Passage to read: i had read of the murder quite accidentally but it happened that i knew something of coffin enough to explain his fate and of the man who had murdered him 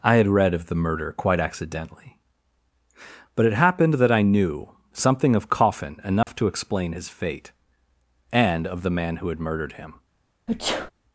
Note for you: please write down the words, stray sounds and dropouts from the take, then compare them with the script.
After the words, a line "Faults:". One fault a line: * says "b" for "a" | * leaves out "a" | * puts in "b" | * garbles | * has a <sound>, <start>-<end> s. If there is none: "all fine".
i had read of the murder quite accidentally but it happened that i knew something of coffin enough to explain his fate and of the man who had murdered him
Faults:
* has a dropout, 6.2-6.3 s
* has a sneeze, 10.5-10.9 s